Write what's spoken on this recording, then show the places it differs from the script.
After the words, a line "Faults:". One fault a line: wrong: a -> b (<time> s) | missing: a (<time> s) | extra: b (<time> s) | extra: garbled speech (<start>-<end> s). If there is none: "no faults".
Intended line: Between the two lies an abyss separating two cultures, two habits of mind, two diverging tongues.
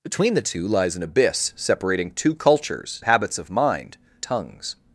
Between the two lies an abyss separating two cultures, habits of mind, tongues.
Faults:
missing: two (3.0 s)
missing: two diverging (4.0 s)